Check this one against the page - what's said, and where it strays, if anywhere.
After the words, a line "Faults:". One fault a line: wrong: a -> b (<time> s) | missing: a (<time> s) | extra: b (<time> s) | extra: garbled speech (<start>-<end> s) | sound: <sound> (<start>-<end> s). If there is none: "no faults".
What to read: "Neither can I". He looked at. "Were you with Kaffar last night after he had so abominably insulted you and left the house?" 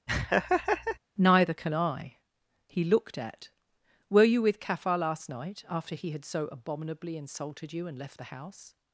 "Neither can I". He looked at. "Were you with Kaffar last night after he had so abominably insulted you and left the house?"
Faults:
sound: laugh (0.1-1.0 s)